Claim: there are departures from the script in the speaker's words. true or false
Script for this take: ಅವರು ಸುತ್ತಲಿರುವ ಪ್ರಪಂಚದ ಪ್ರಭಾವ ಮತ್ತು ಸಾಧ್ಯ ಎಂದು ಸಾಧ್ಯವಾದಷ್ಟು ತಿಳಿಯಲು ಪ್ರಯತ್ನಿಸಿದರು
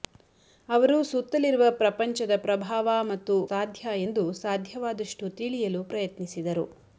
false